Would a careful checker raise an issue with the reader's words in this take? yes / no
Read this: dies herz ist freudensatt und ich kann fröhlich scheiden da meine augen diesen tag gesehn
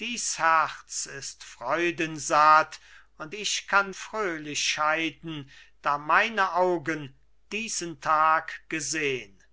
no